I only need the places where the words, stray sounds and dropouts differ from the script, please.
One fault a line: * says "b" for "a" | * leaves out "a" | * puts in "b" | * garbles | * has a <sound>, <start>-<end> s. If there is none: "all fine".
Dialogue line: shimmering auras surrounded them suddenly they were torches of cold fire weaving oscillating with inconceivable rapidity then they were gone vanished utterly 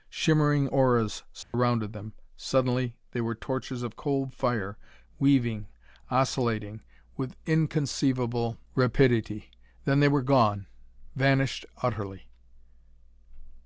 * has a dropout, 1.4-1.5 s